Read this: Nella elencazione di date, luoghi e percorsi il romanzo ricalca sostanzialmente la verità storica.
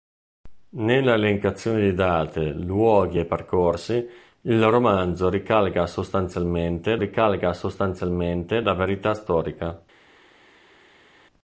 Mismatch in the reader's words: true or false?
true